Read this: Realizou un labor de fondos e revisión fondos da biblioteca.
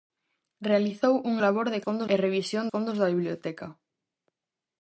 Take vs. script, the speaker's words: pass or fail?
pass